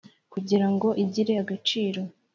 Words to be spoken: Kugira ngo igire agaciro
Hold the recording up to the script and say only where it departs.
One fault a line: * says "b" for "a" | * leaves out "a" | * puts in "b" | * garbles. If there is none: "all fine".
all fine